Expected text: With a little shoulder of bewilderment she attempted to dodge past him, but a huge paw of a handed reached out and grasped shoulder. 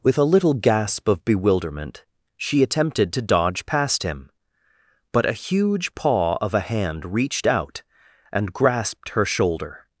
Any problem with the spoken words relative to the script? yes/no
yes